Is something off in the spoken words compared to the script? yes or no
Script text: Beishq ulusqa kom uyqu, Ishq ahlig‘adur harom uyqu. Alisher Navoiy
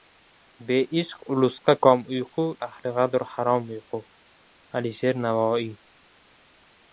yes